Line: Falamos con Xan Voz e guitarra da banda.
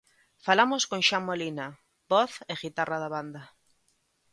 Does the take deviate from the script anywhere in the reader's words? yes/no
yes